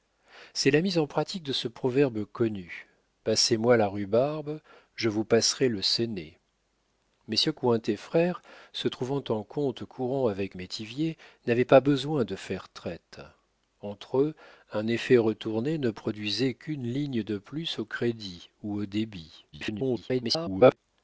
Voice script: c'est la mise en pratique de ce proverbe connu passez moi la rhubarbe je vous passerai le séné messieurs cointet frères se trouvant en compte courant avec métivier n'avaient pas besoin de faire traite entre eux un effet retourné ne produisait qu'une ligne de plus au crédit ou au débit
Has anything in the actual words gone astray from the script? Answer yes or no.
yes